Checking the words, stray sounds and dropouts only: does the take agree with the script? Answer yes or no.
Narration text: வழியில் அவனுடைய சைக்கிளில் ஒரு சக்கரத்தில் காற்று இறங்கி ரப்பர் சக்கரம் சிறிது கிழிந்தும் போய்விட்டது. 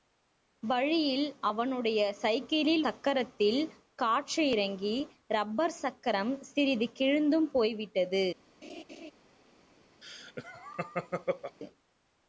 no